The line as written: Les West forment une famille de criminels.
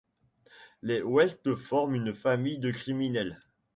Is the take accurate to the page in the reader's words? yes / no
yes